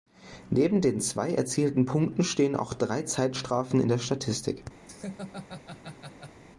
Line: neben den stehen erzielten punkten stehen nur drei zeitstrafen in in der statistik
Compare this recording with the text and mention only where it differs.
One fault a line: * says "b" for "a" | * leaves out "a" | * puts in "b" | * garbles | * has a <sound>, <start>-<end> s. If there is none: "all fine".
* says "zwei" for "stehen"
* says "auch" for "nur"
* leaves out "in"
* has a laugh, 4.9-6.4 s